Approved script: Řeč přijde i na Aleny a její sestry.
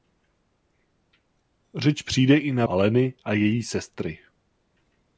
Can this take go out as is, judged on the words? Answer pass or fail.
pass